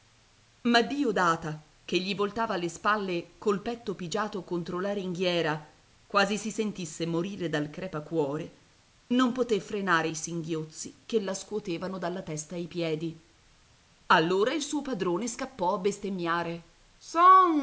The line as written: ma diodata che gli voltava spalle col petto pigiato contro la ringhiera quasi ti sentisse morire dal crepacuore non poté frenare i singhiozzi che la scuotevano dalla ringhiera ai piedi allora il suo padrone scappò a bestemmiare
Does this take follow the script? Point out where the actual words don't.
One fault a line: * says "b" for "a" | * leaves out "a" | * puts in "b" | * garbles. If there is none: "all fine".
* puts in "le"
* says "si" for "ti"
* says "testa" for "ringhiera"